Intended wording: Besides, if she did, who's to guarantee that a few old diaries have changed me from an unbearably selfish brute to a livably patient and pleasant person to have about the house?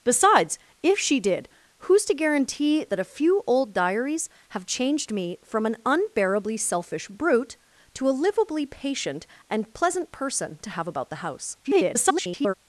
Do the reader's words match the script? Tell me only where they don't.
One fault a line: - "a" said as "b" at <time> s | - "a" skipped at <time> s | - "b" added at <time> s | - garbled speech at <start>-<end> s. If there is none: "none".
- garbled speech at 11.6-12.5 s